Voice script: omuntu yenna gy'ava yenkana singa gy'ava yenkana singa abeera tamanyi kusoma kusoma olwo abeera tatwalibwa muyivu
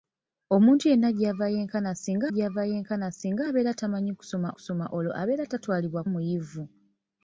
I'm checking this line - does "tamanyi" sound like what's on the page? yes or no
yes